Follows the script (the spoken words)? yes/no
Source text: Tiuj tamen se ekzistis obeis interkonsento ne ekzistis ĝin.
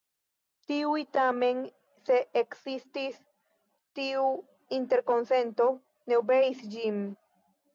no